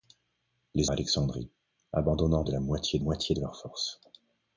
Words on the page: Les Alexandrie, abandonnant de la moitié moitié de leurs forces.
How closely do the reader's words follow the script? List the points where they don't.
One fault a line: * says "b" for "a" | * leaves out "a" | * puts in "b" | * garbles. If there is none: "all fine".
all fine